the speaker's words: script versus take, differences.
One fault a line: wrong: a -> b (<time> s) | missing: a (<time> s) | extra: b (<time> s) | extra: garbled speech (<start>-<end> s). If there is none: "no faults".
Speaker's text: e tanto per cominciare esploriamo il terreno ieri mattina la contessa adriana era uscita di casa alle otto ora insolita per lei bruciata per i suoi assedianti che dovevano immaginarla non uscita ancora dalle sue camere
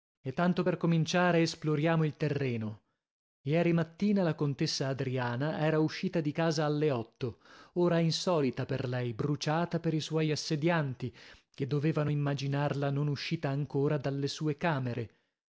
no faults